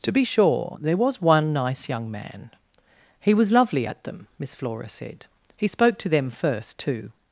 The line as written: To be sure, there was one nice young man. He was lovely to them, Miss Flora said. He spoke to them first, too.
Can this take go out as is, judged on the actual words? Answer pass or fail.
fail